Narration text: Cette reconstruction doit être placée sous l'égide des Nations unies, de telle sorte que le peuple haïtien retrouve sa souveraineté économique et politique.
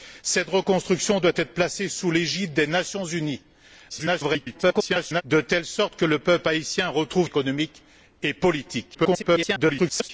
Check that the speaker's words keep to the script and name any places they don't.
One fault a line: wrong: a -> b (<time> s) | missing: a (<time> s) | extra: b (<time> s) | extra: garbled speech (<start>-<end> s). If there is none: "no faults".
extra: garbled speech (3.9-5.2 s)
missing: sa souveraineté (7.3 s)
extra: garbled speech (8.9-10.1 s)